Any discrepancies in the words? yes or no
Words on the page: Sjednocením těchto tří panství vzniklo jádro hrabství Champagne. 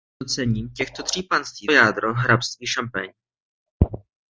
yes